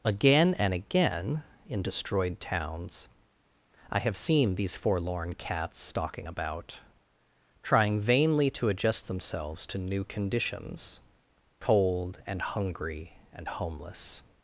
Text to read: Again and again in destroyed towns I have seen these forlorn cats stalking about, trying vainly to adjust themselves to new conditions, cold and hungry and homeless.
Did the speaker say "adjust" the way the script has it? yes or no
yes